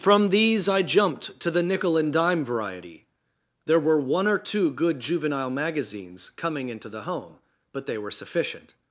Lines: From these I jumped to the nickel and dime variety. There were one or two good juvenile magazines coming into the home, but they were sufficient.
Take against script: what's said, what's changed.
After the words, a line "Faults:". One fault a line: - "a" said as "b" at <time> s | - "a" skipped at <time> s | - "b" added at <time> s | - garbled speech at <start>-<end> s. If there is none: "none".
From these I jumped to the nickel and dime variety. There were one or two good juvenile magazines coming into the home, but they were sufficient.
Faults:
none